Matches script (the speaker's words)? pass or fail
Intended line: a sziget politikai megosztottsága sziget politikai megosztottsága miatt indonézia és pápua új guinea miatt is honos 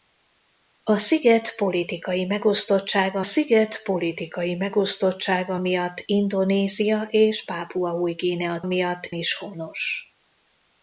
pass